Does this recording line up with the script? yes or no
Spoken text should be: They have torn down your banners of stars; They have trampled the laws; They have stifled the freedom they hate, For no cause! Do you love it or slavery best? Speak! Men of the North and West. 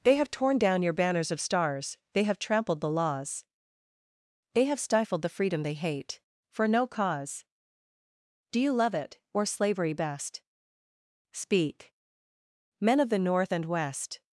yes